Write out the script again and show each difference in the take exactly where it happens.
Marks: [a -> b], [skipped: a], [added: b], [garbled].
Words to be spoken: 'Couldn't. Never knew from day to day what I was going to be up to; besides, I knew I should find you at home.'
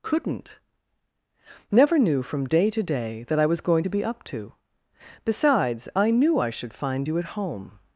'Couldn't. Never knew from day to day [what -> that] I was going to be up to; besides, I knew I should find you at home.'